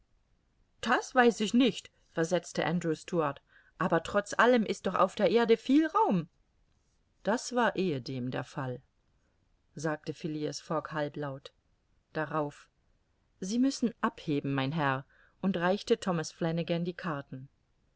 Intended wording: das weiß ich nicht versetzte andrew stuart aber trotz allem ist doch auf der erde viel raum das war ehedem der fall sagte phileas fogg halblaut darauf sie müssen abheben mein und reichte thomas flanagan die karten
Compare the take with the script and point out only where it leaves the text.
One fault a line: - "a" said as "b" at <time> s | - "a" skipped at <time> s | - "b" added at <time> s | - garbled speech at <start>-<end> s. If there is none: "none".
- "herr" added at 14.7 s